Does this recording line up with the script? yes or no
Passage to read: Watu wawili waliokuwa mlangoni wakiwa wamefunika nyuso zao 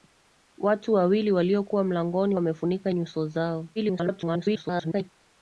no